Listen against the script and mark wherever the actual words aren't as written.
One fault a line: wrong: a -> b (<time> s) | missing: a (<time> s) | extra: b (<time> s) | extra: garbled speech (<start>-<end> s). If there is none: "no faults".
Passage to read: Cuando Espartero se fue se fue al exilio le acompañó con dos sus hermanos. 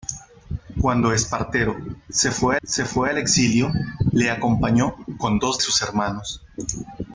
no faults